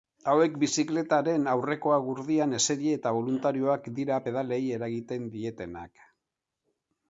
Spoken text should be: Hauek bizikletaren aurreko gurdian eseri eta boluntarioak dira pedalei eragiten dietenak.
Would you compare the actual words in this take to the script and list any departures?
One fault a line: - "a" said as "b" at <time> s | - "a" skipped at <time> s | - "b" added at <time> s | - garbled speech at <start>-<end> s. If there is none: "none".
none